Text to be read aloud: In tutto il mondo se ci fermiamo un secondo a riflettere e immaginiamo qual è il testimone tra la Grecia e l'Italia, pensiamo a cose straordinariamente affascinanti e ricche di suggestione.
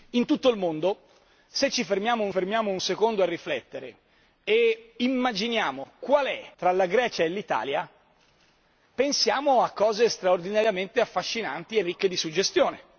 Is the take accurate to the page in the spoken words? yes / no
no